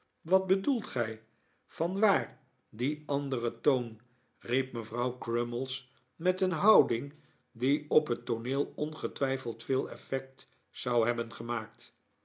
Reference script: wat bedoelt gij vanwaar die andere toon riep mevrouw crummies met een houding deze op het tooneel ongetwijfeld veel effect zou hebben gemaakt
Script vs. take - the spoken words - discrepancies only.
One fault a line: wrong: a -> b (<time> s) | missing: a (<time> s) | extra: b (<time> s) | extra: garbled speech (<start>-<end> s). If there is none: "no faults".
wrong: deze -> die (7.5 s)